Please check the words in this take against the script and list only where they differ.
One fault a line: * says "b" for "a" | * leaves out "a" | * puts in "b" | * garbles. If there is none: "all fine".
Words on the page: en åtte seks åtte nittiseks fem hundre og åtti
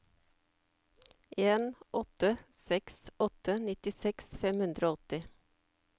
all fine